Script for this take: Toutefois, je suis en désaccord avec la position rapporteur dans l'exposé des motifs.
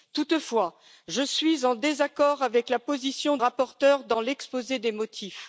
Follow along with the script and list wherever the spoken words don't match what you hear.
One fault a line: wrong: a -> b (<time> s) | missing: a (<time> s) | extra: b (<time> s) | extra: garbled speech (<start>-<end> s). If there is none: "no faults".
no faults